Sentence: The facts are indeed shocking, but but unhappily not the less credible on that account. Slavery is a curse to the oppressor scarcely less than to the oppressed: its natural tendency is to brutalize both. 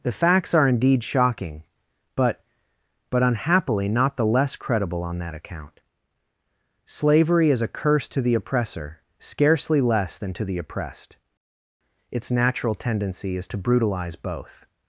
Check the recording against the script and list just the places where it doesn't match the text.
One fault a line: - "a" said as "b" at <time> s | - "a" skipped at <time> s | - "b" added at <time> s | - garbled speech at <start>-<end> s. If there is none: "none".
none